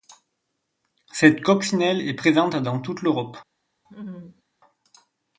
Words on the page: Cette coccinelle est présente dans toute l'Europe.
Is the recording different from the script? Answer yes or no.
no